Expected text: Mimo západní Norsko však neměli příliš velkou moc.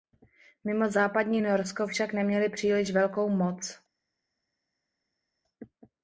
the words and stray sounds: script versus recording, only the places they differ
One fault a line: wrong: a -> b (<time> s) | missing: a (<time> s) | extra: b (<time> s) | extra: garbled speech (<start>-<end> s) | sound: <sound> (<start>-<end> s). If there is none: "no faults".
no faults